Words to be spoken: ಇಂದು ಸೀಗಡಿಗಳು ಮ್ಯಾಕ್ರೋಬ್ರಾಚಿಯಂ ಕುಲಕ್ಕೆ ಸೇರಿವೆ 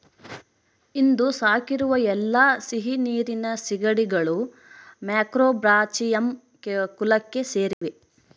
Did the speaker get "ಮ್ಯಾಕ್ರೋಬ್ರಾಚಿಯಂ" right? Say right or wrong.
right